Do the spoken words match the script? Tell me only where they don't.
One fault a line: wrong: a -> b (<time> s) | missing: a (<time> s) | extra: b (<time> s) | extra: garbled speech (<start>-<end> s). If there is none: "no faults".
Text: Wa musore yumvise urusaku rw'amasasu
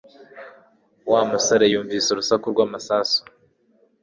no faults